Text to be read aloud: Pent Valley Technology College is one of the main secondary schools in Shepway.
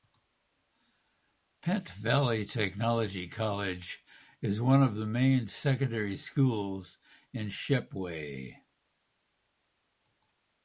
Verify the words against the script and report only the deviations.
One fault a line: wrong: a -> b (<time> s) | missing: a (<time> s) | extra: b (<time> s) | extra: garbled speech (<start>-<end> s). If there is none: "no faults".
no faults